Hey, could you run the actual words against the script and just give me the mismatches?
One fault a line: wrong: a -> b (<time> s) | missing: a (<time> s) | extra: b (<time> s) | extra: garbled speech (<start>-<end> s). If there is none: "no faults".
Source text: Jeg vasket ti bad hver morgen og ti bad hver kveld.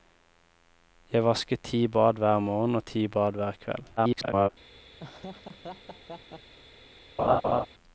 extra: garbled speech (4.0-4.5 s)